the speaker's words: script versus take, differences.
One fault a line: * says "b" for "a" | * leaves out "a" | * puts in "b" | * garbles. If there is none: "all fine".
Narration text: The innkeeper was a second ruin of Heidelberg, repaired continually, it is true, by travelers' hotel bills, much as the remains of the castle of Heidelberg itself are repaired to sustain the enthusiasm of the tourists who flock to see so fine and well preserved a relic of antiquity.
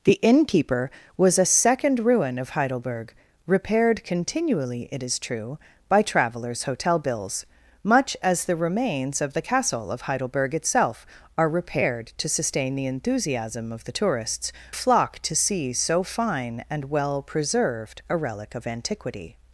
* leaves out "who"